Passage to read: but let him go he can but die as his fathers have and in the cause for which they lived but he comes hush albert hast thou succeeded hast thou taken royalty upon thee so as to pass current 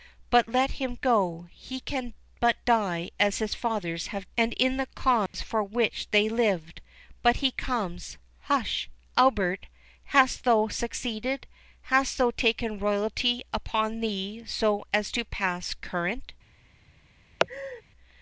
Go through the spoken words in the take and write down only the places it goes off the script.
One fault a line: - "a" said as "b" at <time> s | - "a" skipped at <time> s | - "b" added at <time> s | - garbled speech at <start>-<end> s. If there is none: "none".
none